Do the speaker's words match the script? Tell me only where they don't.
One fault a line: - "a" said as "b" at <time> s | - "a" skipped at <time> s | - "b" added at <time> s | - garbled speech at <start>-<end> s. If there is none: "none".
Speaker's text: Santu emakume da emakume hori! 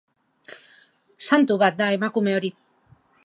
- "emakume" said as "bat" at 1.6 s